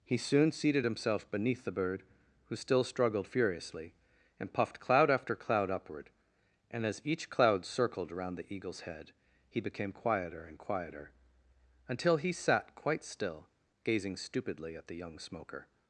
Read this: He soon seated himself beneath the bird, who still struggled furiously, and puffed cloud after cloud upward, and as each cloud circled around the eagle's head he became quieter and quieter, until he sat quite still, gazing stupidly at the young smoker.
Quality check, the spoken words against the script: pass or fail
pass